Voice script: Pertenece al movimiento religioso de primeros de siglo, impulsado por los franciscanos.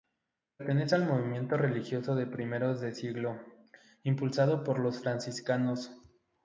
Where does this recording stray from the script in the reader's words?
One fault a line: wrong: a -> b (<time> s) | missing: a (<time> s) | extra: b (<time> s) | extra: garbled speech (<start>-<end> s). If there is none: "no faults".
no faults